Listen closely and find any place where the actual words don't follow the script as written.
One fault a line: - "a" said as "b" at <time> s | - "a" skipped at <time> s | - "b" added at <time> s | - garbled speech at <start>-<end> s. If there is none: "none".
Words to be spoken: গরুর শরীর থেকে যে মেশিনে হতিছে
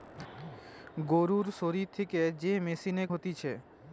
none